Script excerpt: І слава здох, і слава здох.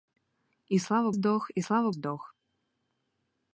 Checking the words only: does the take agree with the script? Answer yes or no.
yes